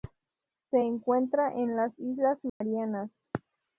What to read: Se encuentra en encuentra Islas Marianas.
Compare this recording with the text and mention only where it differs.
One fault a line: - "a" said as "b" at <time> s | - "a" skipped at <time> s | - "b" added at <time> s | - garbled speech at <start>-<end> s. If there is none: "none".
- "encuentra" said as "las" at 1.8 s